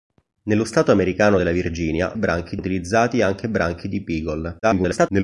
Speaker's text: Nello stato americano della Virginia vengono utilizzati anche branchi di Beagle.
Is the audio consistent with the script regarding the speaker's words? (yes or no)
no